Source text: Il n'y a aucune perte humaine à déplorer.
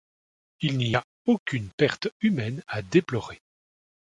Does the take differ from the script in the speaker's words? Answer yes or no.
no